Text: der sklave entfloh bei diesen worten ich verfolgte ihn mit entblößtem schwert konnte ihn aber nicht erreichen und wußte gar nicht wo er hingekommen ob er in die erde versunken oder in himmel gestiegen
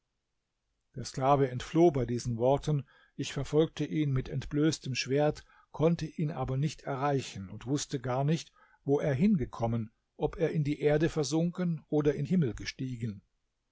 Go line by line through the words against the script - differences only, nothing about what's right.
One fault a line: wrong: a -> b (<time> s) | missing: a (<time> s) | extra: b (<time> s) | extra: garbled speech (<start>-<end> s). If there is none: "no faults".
no faults